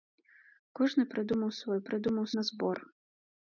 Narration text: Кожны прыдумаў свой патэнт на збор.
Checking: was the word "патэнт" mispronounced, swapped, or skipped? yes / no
yes